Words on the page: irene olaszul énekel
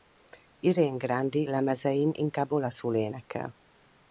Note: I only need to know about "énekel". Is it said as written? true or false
true